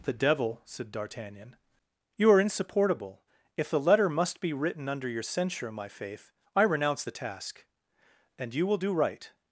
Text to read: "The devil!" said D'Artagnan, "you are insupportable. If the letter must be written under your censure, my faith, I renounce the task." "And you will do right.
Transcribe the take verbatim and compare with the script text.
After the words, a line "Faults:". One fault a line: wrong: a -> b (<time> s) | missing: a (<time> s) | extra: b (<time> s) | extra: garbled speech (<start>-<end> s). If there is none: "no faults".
"The devil!" said D'Artagnan, "you are insupportable. If the letter must be written under your censure, my faith, I renounce the task." "And you will do right.
Faults:
no faults